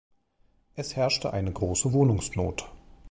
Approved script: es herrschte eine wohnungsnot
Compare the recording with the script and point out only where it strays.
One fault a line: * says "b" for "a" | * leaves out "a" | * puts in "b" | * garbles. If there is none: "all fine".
* puts in "große"